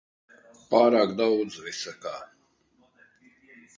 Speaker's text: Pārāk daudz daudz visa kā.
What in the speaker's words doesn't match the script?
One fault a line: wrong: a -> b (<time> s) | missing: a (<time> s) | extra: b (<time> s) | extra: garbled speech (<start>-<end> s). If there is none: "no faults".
missing: daudz (1.6 s)